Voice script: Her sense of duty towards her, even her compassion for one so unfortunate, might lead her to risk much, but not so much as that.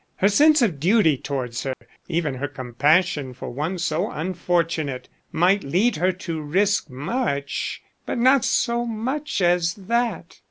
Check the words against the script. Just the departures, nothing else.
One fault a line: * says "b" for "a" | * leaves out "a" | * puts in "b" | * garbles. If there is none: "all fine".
all fine